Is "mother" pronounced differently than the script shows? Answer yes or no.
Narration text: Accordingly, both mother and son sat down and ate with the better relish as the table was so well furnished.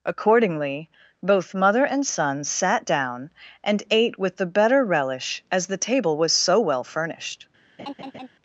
no